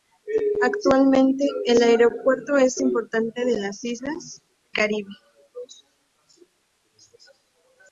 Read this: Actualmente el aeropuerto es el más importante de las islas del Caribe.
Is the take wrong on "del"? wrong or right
wrong